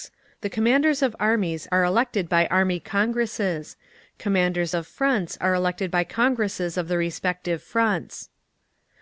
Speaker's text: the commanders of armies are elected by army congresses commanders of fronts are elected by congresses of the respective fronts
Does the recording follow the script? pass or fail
pass